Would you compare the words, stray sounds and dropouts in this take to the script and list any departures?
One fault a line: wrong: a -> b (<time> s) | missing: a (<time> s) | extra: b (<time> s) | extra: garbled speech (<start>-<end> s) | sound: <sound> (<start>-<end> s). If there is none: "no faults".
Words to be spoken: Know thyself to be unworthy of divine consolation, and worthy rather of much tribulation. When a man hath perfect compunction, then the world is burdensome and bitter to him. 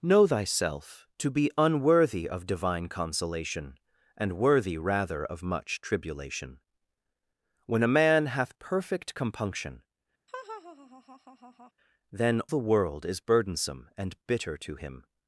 sound: laugh (10.3-11.7 s)